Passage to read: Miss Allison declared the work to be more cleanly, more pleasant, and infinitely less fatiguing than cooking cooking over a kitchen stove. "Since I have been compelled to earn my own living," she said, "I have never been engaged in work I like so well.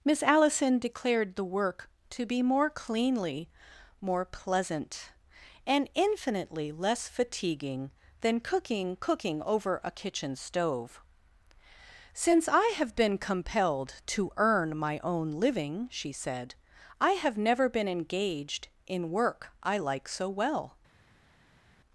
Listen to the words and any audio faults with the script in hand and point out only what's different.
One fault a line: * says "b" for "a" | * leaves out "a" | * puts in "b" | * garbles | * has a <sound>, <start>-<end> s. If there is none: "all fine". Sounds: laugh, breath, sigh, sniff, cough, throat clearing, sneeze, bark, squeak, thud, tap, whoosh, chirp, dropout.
all fine